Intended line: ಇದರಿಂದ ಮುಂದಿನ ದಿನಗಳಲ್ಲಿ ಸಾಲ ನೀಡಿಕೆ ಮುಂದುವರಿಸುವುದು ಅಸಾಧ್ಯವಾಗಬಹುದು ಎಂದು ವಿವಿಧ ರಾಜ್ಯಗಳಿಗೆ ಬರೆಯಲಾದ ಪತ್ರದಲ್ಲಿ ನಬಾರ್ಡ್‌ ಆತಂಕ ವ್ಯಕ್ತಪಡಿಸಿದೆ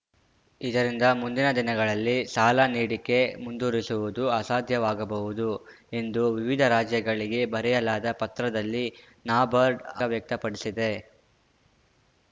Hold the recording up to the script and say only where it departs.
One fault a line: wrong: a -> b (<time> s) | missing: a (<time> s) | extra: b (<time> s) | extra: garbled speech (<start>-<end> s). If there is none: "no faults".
missing: ಆತಂಕ (9.8 s)